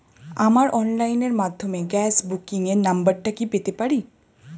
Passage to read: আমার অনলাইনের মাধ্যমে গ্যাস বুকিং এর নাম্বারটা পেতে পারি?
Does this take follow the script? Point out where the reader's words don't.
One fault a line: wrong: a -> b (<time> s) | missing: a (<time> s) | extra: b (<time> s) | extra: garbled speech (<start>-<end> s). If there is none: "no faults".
extra: কি (3.3 s)